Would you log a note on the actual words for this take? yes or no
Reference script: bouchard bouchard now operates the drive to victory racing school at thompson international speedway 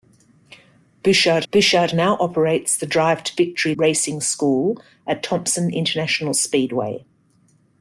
no